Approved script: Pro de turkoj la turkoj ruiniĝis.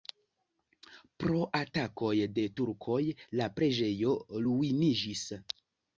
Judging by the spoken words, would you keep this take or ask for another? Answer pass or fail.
fail